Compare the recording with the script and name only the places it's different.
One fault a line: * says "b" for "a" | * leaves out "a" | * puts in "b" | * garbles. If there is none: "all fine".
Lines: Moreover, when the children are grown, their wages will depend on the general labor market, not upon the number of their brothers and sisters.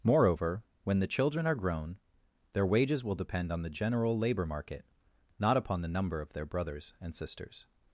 all fine